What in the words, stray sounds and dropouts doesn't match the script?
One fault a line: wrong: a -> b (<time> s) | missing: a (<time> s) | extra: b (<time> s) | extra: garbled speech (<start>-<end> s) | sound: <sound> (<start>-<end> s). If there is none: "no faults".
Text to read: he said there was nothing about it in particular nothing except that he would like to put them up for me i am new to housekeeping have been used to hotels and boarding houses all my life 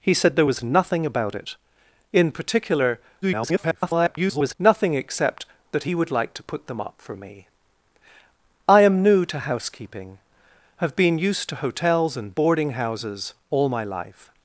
extra: garbled speech (3.2-4.5 s)